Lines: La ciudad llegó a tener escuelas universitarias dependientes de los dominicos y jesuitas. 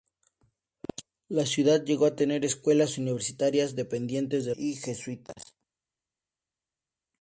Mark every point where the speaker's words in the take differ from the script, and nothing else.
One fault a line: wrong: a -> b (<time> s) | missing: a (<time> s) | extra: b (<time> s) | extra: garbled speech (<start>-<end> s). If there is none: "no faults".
missing: los dominicos (4.5 s)